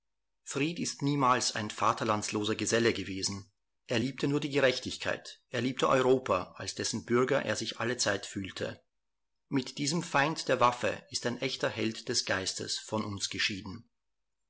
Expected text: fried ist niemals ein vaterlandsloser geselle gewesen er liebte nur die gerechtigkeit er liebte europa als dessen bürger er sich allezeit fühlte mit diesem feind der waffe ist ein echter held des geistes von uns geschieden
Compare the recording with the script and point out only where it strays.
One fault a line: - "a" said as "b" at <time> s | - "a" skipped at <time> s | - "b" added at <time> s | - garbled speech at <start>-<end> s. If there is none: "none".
none